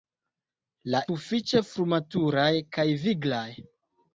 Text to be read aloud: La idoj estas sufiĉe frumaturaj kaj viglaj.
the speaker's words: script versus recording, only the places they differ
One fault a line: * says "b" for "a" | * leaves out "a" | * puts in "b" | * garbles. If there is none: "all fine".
* leaves out "idoj estas"